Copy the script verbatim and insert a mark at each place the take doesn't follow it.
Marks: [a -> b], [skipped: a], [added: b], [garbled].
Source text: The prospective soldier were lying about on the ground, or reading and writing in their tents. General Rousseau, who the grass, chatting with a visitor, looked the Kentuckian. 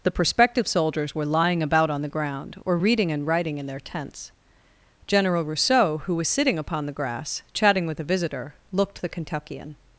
The prospective [soldier -> soldiers] were lying about on the ground, or reading and writing in their tents. General Rousseau, who [added: was sitting upon] the grass, chatting with a visitor, looked the Kentuckian.